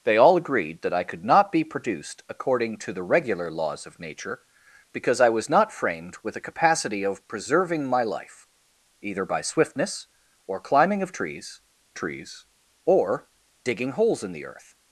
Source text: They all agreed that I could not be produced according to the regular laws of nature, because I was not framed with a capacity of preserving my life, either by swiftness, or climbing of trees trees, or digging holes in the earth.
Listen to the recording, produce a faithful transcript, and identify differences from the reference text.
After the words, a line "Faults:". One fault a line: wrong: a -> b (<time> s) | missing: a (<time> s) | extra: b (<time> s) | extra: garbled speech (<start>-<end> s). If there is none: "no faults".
They all agreed that I could not be produced according to the regular laws of nature, because I was not framed with a capacity of preserving my life, either by swiftness, or climbing of trees trees, or digging holes in the earth.
Faults:
no faults